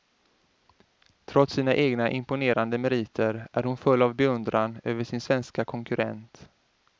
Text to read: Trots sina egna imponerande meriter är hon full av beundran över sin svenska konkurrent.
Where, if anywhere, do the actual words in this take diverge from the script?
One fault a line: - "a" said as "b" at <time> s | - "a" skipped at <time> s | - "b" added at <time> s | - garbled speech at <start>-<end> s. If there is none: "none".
none